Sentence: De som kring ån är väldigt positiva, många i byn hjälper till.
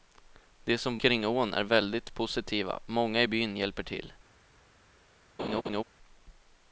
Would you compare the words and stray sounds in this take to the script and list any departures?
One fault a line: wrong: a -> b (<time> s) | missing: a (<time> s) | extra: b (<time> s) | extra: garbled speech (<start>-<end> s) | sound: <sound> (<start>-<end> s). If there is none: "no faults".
sound: laugh (5.4-5.8 s)